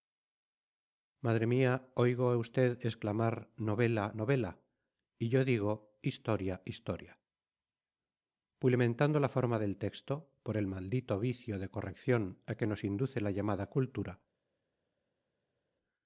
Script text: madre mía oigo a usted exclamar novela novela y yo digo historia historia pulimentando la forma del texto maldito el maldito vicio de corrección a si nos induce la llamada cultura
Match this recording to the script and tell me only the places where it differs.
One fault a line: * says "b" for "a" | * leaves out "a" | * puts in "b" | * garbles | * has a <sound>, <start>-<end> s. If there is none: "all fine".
* says "por" for "maldito"
* says "que" for "si"